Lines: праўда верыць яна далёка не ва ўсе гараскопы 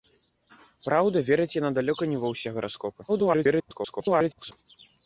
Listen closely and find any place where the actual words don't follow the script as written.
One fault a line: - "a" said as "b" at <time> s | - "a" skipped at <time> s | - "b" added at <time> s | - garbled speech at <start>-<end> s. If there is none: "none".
- garbled speech at 3.1-4.5 s